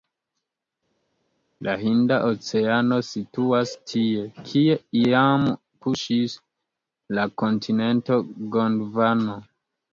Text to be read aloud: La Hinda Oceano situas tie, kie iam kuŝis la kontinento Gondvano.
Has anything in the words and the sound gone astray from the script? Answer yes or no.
no